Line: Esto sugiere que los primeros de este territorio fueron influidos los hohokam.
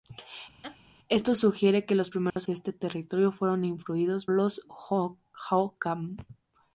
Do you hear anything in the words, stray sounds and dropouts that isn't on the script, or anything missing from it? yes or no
yes